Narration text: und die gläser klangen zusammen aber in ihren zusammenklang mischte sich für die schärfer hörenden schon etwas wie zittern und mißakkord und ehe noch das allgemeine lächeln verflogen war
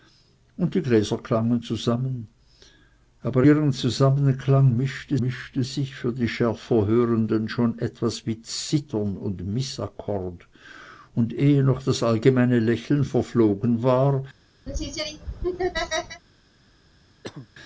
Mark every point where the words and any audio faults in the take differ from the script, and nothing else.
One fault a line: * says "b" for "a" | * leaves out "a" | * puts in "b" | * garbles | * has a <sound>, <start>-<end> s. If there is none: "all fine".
* leaves out "in"
* puts in "mischte"
* has a laugh, 14.7-16.2 s
* has a cough, 17.2-17.5 s